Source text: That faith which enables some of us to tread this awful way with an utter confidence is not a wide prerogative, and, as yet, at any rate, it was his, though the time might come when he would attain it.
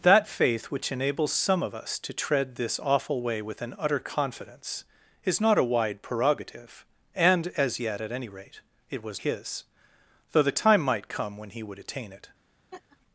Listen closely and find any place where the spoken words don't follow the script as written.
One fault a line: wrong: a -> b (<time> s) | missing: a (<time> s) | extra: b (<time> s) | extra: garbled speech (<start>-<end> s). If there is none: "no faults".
no faults